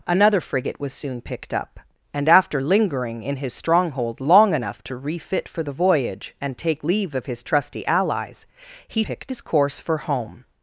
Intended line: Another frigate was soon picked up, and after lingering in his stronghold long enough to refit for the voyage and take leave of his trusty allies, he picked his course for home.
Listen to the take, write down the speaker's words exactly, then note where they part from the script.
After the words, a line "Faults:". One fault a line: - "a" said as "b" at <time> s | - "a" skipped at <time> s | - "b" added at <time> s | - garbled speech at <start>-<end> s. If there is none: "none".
Another frigate was soon picked up, and after lingering in his stronghold long enough to refit for the voyage and take leave of his trusty allies, he picked his course for home.
Faults:
none